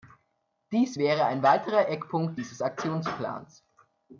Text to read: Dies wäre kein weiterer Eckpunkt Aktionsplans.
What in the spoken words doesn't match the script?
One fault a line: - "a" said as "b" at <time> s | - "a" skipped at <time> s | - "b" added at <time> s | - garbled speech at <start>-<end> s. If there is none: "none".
- "kein" said as "ein" at 1.3 s
- "dieses" added at 2.4 s